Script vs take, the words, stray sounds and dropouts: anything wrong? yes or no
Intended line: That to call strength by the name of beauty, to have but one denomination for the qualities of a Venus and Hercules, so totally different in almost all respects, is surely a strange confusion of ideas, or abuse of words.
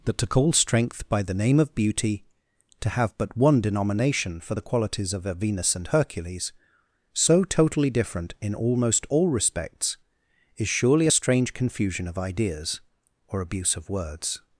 no